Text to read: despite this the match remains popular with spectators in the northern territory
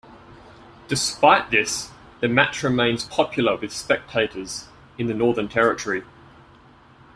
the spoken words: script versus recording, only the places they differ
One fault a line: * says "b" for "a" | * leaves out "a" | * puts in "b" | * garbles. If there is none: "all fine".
all fine